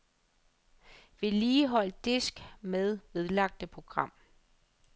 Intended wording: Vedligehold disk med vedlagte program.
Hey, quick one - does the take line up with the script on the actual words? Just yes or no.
yes